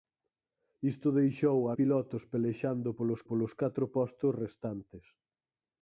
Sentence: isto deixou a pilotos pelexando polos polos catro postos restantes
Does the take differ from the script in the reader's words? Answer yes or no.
no